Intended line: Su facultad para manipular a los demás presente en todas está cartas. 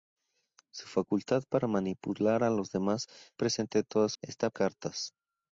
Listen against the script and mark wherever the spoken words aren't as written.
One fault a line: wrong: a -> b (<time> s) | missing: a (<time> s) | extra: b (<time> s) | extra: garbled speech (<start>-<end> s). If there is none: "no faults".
no faults